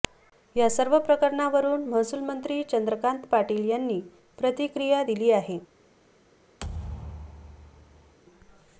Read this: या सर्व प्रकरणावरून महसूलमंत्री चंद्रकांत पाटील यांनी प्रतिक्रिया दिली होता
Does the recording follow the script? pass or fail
fail